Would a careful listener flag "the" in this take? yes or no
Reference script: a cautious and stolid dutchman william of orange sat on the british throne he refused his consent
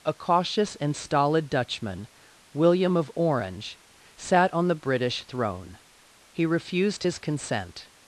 no